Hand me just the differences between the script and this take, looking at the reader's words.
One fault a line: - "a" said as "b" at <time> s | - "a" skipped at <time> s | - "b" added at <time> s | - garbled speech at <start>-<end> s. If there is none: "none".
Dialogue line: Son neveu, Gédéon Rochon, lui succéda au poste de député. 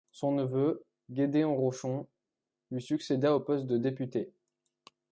none